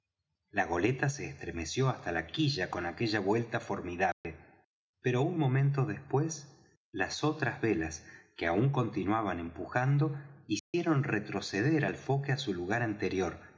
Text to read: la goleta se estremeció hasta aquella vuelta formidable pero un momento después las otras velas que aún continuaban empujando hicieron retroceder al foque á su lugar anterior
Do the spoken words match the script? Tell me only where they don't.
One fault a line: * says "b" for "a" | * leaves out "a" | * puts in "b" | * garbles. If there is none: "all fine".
* puts in "la quilla con"